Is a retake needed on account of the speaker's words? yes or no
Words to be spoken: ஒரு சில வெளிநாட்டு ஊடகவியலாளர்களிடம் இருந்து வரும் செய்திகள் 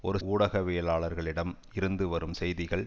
yes